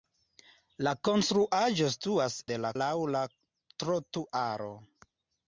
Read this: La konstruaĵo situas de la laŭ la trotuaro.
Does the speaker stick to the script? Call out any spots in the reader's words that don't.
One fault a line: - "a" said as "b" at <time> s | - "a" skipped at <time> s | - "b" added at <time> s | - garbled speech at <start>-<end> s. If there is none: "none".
none